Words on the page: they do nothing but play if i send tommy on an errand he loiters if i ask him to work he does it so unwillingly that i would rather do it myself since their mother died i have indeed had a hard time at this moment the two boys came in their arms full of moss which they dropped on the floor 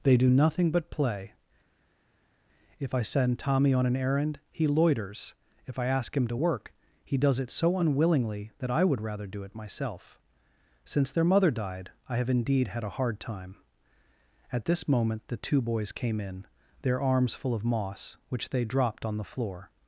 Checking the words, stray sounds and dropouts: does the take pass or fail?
pass